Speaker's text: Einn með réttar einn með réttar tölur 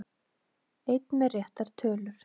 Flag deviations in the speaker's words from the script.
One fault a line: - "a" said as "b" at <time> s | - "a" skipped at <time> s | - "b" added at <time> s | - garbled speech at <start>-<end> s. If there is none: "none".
- "einn með réttar" skipped at 1.7 s